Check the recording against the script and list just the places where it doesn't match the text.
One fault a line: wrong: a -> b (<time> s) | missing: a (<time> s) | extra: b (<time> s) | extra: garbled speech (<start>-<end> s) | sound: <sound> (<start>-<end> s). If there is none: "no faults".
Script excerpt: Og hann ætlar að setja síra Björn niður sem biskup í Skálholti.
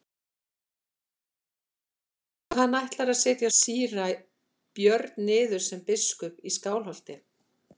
no faults